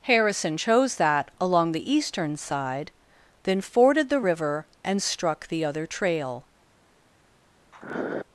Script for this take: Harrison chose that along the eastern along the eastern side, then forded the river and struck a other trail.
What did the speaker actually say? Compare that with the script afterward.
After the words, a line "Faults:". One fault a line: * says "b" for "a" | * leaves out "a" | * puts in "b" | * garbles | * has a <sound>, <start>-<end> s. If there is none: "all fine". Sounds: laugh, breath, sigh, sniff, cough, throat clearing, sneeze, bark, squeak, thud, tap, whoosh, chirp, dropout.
Harrison chose that along the eastern side, then forded the river and struck the other trail.
Faults:
* leaves out "along the eastern"
* says "the" for "a"
* has a sniff, 7.7-8.2 s